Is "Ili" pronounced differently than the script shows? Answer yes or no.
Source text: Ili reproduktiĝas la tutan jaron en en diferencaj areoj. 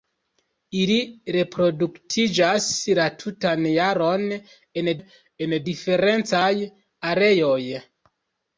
no